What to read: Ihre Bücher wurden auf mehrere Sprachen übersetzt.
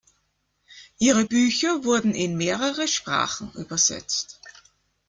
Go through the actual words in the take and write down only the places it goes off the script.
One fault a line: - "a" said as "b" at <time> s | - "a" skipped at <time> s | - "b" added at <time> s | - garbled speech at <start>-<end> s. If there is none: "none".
- "auf" said as "in" at 2.1 s